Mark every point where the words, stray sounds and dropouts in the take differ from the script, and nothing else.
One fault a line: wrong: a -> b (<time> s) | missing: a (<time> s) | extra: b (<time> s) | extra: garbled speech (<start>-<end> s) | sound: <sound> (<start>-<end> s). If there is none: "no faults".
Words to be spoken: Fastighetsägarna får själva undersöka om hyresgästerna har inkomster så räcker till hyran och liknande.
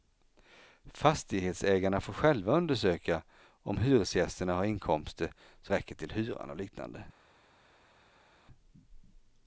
no faults